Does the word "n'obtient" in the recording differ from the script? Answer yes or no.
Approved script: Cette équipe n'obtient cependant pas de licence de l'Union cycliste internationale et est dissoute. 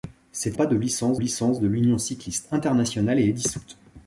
yes